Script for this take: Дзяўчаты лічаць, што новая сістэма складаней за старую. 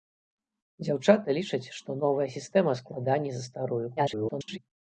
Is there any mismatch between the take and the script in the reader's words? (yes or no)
yes